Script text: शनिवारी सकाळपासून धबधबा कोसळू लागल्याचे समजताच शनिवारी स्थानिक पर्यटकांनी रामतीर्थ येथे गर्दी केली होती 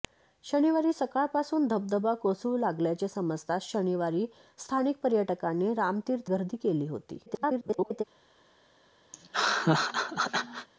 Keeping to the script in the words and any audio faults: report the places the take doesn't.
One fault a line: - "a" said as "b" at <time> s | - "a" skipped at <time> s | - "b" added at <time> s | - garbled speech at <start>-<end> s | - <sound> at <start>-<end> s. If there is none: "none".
- "येथे" skipped at 6.3 s
- garbled speech at 7.3-8.0 s
- laugh at 9.1-10.7 s